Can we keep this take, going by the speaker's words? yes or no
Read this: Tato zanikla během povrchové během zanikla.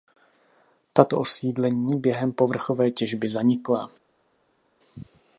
no